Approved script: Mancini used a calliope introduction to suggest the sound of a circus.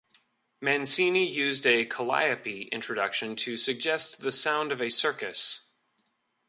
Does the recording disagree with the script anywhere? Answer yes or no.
no